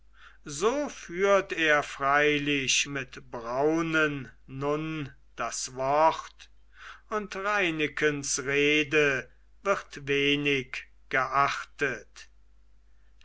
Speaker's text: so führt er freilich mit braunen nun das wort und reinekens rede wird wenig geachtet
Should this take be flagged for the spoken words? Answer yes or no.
no